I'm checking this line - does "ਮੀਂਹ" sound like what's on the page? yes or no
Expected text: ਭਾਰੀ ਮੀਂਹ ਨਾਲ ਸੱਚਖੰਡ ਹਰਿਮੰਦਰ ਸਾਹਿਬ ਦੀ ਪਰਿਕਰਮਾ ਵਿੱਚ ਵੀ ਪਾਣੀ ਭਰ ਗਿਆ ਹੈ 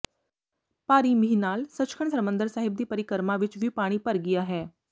yes